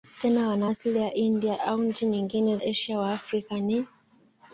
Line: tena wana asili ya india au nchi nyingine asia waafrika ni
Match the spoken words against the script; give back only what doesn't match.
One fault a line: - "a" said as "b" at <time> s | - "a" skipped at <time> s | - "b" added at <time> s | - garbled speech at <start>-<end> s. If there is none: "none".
none